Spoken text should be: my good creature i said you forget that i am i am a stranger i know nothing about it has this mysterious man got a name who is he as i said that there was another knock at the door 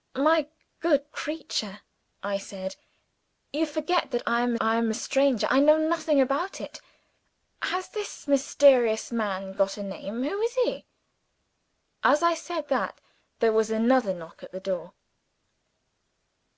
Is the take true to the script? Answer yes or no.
yes